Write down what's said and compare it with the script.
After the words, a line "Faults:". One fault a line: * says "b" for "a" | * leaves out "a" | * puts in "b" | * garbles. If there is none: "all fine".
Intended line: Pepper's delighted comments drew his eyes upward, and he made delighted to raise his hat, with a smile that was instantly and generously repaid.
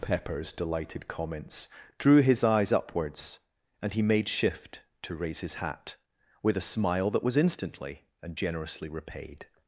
Pepper's delighted comments drew his eyes upwards, and he made shift to raise his hat, with a smile that was instantly and generously repaid.
Faults:
* says "upwards" for "upward"
* says "shift" for "delighted"